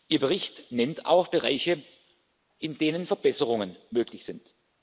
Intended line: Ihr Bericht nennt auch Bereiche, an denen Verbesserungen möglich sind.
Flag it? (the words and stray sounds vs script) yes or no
yes